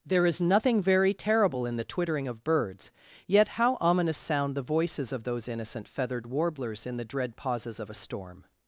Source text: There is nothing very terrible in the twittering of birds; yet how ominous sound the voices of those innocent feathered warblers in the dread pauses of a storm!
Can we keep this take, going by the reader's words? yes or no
yes